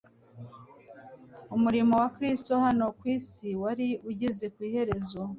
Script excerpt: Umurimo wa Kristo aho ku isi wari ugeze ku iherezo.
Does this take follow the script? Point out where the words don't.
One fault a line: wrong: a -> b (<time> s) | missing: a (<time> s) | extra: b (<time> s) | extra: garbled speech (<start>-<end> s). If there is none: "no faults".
wrong: aho -> hano (2.7 s)